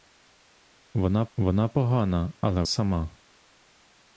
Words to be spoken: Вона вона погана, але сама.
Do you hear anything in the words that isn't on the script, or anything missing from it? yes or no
no